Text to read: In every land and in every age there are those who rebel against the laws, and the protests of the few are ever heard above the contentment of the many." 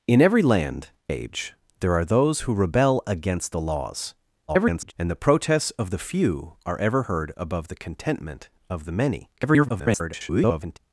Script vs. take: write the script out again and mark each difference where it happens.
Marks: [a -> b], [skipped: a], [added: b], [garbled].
In every land [skipped: and in every] age there are those who rebel against the laws, [garbled] and the protests of the few are ever heard above the contentment of the many." [garbled]